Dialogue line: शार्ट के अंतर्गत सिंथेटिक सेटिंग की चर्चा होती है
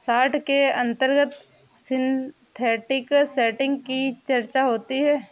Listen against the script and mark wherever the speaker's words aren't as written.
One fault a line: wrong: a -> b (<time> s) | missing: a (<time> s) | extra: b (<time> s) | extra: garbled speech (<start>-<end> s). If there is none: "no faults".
no faults